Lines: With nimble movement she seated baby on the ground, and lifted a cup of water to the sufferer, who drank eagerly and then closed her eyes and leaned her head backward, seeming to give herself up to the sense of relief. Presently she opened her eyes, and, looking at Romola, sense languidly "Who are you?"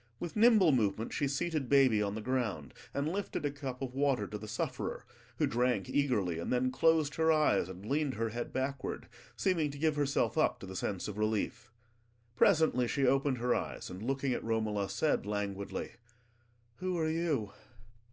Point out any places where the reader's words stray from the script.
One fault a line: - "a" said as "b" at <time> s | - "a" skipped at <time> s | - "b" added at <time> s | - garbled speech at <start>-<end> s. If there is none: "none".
- "sense" said as "said" at 14.9 s